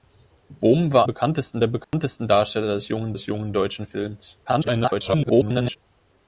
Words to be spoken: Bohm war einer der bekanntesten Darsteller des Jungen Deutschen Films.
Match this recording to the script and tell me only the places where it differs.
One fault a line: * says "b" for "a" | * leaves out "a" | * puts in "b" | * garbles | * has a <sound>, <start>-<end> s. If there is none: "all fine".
* says "bekanntesten" for "einer"
* has a dropout, 1.8-1.9 s
* puts in "des Jungen"
* garbles